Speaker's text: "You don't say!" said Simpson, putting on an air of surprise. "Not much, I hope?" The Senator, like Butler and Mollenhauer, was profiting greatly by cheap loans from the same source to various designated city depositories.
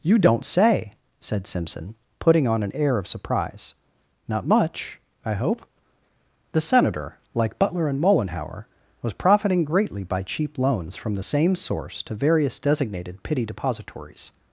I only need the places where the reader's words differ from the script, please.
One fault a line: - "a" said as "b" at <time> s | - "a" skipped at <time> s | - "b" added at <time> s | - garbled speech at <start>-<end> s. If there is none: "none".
- "city" said as "pity" at 13.2 s